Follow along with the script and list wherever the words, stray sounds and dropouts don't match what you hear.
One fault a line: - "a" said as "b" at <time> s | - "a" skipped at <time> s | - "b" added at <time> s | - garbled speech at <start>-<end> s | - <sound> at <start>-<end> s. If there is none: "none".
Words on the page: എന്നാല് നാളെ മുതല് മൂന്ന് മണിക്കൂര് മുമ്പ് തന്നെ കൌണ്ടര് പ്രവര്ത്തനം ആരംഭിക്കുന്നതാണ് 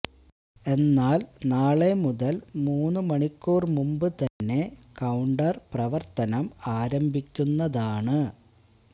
- dropout at 4.3-4.4 s